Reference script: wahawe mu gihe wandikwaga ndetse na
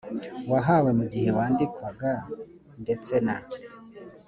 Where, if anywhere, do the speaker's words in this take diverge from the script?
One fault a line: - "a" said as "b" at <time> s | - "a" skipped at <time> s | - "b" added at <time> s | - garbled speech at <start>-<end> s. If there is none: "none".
none